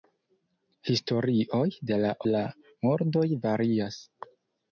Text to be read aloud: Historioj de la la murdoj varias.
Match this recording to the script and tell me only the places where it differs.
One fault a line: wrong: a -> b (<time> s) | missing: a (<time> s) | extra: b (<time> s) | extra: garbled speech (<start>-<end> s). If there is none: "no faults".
no faults